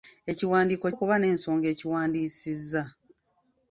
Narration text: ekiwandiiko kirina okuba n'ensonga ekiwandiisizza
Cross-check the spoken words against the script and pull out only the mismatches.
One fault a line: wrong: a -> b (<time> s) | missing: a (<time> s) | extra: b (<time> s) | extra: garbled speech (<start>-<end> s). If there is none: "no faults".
missing: kirina (0.9 s)